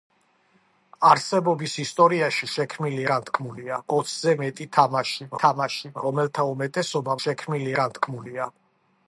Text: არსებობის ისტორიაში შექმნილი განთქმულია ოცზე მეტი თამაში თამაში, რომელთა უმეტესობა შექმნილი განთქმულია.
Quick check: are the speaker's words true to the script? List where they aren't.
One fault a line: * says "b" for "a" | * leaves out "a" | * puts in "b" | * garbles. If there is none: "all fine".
all fine